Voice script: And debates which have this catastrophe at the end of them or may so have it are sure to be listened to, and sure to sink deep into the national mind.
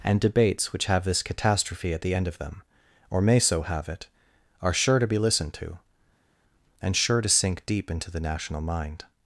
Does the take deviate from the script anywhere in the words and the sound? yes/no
no